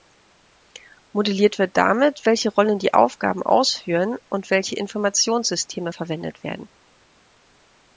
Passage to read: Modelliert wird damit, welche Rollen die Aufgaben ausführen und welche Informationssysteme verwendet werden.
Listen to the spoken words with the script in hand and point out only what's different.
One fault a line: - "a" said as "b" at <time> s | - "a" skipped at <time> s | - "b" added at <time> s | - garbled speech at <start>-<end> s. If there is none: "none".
none